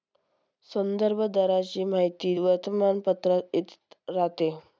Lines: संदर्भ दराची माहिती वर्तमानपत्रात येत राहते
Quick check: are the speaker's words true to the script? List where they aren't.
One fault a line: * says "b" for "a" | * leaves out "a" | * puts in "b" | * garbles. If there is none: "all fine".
all fine